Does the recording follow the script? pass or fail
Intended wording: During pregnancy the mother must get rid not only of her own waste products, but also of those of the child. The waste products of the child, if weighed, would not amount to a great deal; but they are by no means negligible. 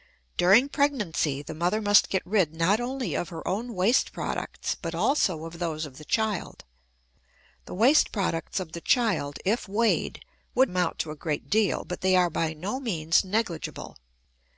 fail